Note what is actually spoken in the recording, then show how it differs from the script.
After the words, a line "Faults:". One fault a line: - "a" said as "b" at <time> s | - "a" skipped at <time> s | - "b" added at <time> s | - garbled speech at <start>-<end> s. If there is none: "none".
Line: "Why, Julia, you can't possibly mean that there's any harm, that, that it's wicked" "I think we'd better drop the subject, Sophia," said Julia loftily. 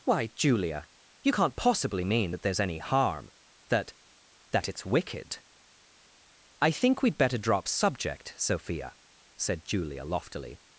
"Why, Julia, you can't possibly mean that there's any harm, that, that it's wicked" "I think we'd better drop subject, Sophia," said Julia loftily.
Faults:
- "the" skipped at 7.7 s